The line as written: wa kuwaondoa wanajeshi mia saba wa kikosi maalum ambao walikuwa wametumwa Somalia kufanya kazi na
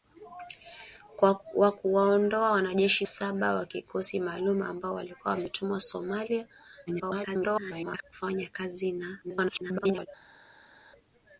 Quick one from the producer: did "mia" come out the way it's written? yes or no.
no